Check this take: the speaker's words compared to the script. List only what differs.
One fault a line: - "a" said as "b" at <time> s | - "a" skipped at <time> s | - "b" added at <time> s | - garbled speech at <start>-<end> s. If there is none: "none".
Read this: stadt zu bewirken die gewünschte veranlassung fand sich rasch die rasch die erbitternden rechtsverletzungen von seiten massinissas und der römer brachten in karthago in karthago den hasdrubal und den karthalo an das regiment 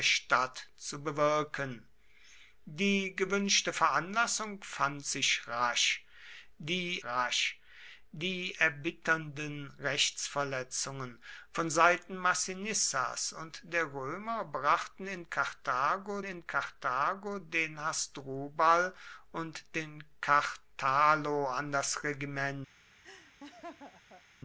none